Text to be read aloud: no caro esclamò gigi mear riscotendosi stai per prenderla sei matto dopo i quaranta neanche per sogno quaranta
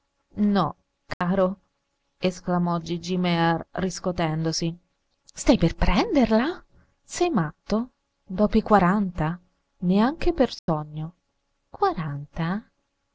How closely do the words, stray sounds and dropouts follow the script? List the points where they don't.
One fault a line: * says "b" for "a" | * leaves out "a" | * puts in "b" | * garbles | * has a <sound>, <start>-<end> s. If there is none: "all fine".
* has a dropout, 1.1-1.2 s
* has a dropout, 10.6-10.7 s